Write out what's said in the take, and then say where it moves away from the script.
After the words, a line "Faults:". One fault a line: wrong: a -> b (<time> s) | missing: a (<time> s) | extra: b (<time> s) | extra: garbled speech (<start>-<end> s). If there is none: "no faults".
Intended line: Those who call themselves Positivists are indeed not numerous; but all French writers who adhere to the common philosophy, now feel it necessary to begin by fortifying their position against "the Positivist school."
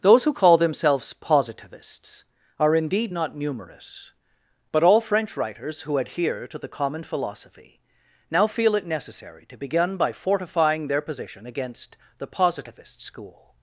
Those who call themselves Positivists are indeed not numerous; but all French writers who adhere to the common philosophy, now feel it necessary to begin by fortifying their position against "the Positivist school."
Faults:
no faults